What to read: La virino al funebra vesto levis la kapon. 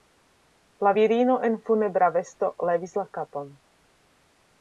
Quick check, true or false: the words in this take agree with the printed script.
false